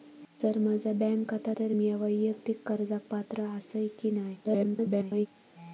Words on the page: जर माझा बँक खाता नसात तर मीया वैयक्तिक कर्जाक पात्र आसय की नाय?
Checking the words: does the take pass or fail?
fail